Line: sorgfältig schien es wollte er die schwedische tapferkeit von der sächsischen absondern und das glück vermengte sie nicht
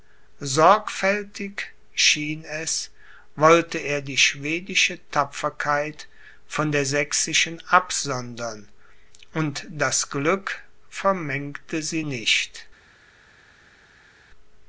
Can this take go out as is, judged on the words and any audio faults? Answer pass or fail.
pass